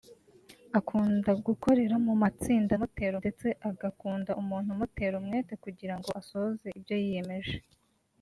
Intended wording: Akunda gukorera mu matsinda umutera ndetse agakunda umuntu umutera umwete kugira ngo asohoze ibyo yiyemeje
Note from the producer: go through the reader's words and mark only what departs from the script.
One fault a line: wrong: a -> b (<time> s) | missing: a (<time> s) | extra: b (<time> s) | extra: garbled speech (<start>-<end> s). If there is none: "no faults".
no faults